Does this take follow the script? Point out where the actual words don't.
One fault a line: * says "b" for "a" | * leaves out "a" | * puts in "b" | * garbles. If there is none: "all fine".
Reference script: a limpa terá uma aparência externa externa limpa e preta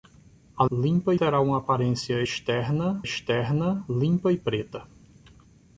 all fine